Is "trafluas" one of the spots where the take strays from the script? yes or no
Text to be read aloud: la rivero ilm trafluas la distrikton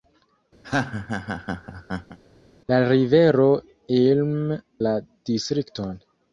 yes